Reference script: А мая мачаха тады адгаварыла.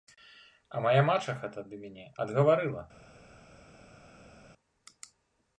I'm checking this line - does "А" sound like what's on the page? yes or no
yes